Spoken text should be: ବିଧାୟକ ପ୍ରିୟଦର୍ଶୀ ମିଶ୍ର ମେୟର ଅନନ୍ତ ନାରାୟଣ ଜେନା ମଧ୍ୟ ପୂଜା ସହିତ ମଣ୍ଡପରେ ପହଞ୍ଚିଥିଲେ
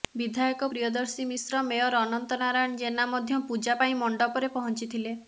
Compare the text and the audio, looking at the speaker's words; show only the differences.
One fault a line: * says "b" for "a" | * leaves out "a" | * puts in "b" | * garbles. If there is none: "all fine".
* says "ପାଇଁ" for "ସହିତ"